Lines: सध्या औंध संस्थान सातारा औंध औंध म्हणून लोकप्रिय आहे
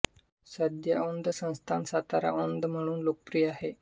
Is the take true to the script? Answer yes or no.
no